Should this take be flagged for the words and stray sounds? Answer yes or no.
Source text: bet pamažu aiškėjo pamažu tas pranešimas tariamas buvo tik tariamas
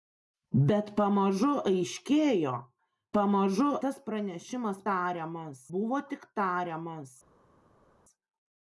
no